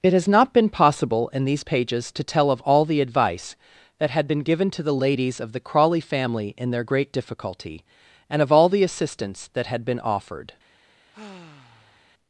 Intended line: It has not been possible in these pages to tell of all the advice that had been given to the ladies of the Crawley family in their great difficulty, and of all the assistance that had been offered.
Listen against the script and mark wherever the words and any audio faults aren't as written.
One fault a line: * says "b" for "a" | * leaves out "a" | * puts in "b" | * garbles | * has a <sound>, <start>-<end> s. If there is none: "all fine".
* has a sigh, 11.1-12.1 s